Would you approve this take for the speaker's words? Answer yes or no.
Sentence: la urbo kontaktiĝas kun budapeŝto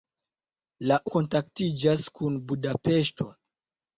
no